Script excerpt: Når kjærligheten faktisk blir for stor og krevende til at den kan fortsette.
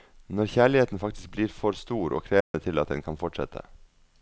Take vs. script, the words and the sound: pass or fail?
fail